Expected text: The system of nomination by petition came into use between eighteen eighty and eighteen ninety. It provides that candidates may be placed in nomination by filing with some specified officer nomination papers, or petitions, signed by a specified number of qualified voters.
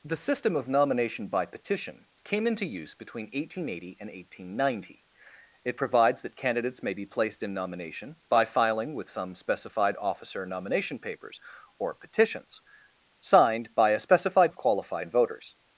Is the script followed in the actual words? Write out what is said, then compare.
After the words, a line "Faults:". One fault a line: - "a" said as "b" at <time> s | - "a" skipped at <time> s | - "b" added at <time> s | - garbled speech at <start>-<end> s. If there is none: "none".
The system of nomination by petition came into use between eighteen eighty and eighteen ninety. It provides that candidates may be placed in nomination by filing with some specified officer nomination papers, or petitions, signed by a specified of qualified voters.
Faults:
- "number" skipped at 14.5 s